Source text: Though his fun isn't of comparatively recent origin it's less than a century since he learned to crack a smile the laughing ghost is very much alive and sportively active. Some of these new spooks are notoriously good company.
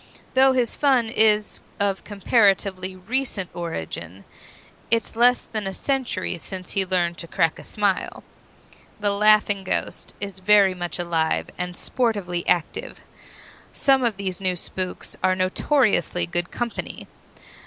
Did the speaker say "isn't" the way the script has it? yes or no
no